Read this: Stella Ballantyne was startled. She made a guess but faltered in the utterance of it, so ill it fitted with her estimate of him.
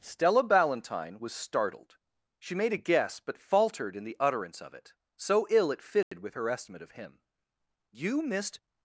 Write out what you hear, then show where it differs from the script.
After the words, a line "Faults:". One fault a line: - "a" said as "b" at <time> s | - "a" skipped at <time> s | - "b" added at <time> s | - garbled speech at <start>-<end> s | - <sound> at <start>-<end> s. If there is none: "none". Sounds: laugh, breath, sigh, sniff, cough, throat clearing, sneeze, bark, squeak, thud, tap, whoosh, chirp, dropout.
Stella Ballantyne was startled. She made a guess but faltered in the utterance of it, so ill it fitted with her estimate of him. "You missed
Faults:
- dropout at 6.0-6.1 s
- "You missed" added at 7.9 s